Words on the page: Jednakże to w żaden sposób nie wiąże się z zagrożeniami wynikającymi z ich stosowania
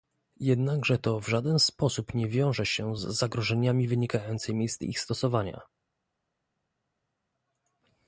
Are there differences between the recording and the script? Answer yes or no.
no